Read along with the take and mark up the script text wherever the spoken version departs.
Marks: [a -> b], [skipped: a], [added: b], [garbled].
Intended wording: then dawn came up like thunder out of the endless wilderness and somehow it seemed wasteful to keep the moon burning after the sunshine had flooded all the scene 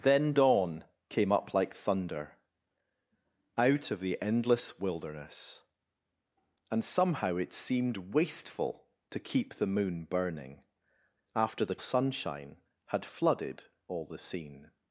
then dawn came up like thunder out of the endless wilderness and somehow it seemed wasteful to keep the moon burning after the sunshine had flooded all the scene